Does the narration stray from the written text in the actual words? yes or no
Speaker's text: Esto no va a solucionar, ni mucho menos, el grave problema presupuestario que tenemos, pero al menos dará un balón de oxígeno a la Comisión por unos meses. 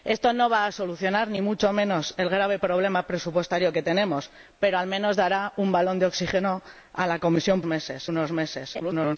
yes